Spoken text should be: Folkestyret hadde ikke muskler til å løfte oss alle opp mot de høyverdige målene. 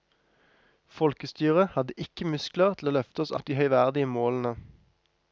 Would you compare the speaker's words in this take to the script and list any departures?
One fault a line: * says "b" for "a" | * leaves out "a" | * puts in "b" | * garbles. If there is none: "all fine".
* leaves out "alle opp"